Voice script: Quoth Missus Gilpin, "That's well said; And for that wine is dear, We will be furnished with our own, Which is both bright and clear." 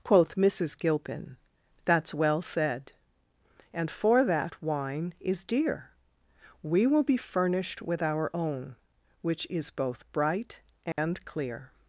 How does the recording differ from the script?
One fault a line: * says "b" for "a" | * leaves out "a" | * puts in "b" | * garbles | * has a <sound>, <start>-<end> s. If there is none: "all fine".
* has a dropout, 10.9-11.0 s